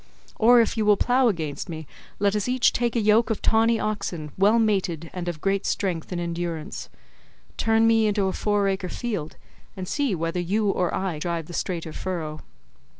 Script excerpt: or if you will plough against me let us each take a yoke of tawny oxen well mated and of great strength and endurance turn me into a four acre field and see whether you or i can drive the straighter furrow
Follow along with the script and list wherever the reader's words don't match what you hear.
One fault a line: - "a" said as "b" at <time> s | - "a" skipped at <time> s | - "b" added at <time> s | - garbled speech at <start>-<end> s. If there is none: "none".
- "can" skipped at 11.2 s